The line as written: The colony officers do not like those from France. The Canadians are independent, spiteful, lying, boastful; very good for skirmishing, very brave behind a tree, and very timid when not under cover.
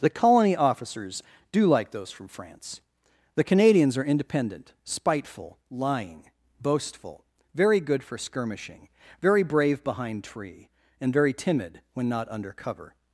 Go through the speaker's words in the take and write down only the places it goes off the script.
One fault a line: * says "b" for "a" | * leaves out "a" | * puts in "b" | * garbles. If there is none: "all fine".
* leaves out "not"
* leaves out "a"